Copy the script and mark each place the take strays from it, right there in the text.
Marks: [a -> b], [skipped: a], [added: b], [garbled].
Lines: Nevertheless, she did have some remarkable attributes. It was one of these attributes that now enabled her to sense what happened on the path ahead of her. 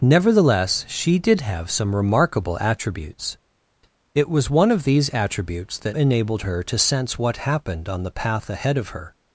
Nevertheless, she did have some remarkable attributes. It was one of these attributes that [skipped: now] enabled her to sense what happened on the path ahead of her.